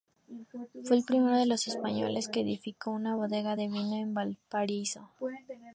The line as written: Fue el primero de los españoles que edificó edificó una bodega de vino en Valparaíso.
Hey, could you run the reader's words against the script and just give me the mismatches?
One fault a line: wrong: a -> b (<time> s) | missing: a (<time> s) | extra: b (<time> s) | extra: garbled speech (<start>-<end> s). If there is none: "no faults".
missing: edificó (2.9 s)